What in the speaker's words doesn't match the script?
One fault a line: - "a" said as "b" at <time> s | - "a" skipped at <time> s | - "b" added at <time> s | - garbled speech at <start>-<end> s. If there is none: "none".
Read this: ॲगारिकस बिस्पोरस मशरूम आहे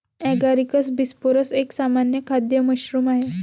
- "एक सामान्य खाद्य" added at 1.6 s